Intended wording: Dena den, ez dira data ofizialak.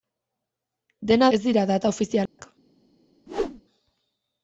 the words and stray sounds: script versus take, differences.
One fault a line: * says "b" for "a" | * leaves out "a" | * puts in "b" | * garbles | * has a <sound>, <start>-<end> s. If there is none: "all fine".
* leaves out "den"
* has a dropout, 2.3-2.4 s
* has a whoosh, 3.3-3.6 s